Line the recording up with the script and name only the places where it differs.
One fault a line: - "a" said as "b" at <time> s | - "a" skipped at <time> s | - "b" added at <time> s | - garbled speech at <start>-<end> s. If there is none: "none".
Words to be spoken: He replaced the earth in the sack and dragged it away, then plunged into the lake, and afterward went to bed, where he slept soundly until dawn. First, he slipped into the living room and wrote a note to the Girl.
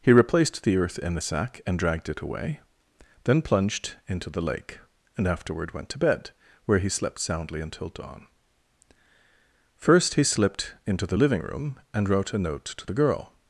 none